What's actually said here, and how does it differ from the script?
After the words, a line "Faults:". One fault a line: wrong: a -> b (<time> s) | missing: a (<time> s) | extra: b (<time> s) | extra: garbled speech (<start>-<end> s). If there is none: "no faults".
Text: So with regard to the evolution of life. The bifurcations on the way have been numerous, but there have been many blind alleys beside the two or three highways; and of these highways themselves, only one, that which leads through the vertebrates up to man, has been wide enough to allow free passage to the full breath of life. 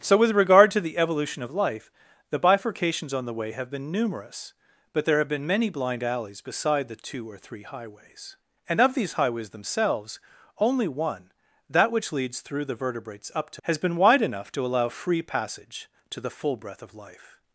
So with regard to the evolution of life. The bifurcations on the way have been numerous, but there have been many blind alleys beside the two or three highways; and of these highways themselves, only one, that which leads through the vertebrates up to has been wide enough to allow free passage to the full breath of life.
Faults:
missing: man (13.6 s)